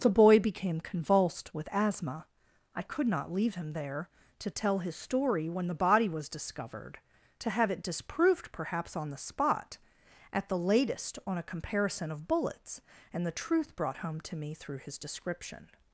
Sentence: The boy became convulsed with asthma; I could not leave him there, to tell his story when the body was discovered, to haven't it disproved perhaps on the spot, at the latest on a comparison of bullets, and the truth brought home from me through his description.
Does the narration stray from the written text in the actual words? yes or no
yes